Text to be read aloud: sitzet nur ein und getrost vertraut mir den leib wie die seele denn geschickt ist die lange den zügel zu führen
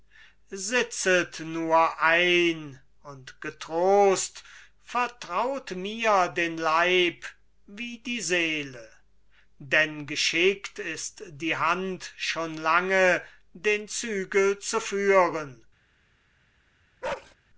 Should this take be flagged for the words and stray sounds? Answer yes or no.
yes